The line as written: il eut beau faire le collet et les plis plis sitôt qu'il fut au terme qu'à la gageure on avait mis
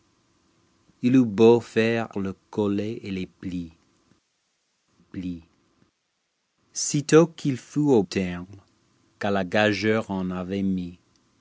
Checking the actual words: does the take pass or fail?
pass